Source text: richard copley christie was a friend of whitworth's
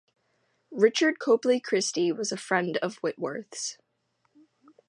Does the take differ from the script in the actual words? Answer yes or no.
no